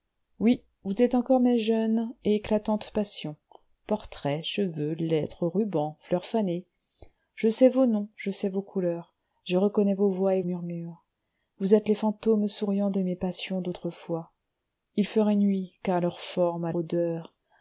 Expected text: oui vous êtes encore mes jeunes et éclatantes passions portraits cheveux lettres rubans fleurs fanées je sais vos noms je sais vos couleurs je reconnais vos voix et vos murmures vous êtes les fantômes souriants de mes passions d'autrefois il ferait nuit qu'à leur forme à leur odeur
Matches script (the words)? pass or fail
fail